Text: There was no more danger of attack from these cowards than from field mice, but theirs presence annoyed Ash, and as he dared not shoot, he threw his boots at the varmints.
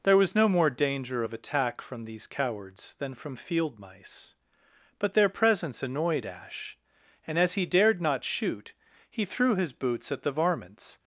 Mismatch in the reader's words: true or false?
true